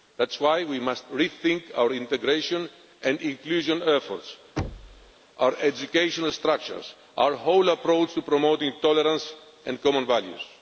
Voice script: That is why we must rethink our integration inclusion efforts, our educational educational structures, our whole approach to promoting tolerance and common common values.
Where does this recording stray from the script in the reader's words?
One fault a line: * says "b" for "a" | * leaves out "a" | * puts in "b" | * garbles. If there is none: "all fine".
* puts in "and"
* leaves out "educational"
* leaves out "common"